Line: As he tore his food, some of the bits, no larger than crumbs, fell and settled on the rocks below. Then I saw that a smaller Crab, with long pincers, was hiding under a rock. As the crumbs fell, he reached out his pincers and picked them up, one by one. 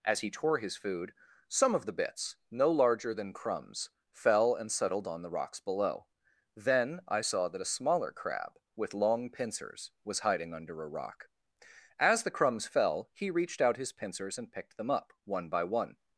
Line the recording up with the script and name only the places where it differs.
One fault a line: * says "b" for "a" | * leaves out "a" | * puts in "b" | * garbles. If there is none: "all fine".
all fine